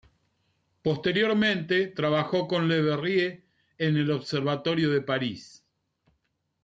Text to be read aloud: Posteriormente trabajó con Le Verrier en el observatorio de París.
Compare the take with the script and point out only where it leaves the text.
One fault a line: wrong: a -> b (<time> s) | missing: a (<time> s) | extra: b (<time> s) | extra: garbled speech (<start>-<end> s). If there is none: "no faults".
no faults